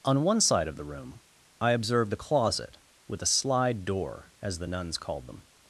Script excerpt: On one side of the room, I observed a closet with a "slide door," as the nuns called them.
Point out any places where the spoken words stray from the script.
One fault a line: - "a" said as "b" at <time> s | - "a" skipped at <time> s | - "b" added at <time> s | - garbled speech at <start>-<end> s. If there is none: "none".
none